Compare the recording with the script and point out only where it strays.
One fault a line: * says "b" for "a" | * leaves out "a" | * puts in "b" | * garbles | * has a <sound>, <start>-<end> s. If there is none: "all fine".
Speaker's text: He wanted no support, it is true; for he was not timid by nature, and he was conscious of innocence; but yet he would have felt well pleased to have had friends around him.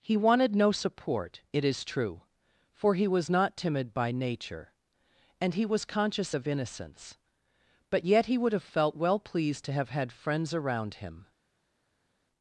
all fine